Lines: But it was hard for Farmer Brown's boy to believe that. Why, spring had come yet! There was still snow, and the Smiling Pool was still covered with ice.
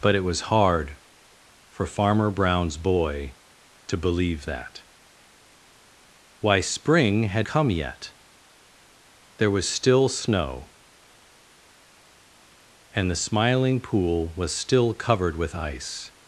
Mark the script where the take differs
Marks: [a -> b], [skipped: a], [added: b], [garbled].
But it was hard for Farmer Brown's boy to believe that. Why, spring had come yet! There was still snow, and the Smiling Pool was still covered with ice.